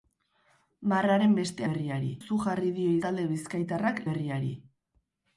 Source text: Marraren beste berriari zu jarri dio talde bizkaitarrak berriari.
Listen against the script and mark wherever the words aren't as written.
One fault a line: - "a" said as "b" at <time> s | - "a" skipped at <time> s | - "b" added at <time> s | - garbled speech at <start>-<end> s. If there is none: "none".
none